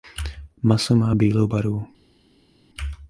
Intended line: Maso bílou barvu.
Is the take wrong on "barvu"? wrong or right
right